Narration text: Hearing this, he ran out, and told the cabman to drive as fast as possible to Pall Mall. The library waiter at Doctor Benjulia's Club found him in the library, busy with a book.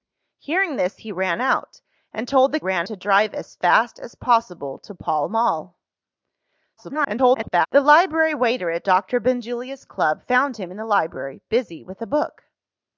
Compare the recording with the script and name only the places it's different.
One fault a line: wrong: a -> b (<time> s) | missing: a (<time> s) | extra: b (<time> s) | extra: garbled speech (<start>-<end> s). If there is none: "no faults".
wrong: cabman -> ran (2.6 s)
extra: garbled speech (6.8-7.7 s)